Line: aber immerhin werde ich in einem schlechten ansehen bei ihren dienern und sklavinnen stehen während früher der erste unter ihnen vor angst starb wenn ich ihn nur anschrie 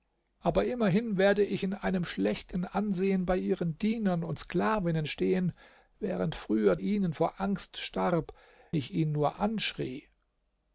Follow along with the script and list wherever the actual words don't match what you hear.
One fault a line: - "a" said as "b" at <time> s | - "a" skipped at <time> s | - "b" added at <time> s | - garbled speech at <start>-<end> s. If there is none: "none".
- "der erste unter" skipped at 6.8 s
- "wenn" skipped at 8.3 s